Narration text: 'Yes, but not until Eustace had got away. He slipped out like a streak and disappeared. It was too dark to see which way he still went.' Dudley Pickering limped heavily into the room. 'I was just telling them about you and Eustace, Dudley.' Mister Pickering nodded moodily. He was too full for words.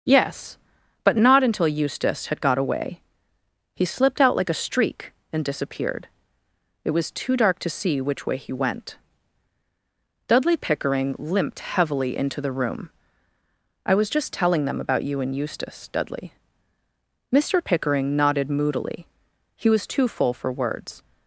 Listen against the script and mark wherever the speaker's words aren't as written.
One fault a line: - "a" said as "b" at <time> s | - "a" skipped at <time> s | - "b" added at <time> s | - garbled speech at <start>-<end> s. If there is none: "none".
- "still" skipped at 8.5 s